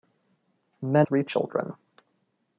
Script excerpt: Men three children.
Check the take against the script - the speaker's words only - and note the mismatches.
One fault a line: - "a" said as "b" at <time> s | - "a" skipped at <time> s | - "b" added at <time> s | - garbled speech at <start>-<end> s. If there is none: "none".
none